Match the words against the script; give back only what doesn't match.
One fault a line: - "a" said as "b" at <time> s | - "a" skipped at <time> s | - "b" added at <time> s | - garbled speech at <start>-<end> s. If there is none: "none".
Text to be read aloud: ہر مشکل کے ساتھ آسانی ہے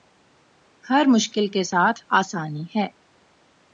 none